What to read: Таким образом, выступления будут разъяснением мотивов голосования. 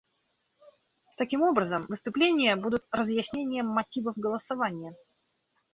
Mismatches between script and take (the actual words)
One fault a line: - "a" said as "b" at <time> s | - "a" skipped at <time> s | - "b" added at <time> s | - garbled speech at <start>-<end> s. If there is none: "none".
none